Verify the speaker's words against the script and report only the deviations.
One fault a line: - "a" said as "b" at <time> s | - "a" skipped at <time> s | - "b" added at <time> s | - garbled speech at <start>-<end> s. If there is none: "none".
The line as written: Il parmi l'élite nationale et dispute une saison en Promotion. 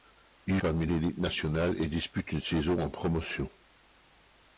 none